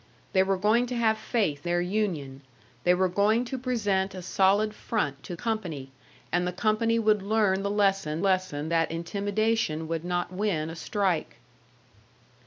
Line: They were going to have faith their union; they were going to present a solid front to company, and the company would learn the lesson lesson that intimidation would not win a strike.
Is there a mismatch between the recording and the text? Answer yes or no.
no